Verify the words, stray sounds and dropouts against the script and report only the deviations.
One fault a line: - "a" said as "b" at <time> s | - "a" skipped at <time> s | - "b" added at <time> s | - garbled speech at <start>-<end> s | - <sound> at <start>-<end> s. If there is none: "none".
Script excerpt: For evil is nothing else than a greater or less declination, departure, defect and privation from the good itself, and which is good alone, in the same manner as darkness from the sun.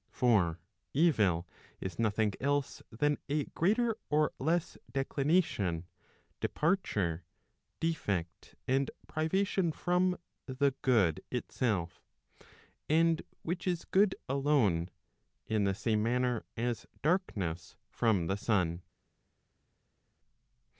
none